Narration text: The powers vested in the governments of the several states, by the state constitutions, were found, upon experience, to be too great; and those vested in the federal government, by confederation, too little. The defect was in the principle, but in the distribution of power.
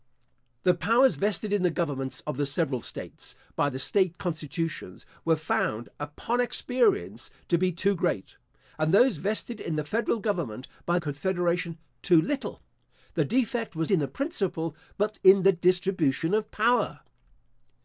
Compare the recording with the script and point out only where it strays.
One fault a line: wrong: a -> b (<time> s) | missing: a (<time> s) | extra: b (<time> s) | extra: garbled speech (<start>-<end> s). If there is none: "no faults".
no faults